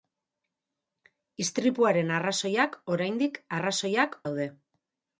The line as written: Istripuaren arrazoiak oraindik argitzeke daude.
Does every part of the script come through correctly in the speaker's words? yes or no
no